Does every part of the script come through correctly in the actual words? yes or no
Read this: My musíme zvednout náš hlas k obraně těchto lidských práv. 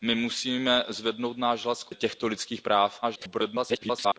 no